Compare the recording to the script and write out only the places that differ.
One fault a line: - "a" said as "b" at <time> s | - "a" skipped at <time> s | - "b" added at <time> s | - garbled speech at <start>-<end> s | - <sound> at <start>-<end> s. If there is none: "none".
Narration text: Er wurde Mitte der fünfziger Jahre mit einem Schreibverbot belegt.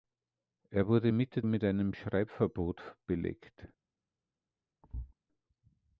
- "der fünfziger Jahre" skipped at 1.4 s
- thud at 4.8-5.1 s